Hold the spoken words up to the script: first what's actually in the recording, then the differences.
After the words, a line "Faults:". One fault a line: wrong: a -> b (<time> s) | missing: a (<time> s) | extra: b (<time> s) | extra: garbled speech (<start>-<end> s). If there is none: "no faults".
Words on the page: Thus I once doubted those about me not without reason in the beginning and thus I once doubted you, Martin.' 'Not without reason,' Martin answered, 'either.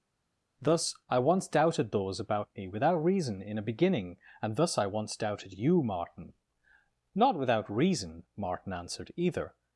Thus I once doubted those about me without reason in a beginning and thus I once doubted you, Martin.' 'Not without reason,' Martin answered, 'either.
Faults:
missing: not (2.7 s)
wrong: the -> a (3.6 s)